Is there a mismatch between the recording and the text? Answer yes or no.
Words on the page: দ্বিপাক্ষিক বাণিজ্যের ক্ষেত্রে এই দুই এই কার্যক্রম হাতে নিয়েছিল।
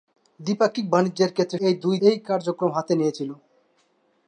no